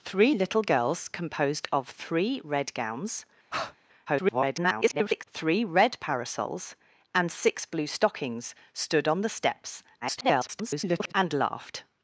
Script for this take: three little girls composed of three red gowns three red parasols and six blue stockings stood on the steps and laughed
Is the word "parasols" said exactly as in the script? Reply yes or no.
yes